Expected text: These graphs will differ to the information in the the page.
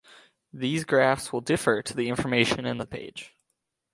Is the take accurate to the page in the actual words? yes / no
yes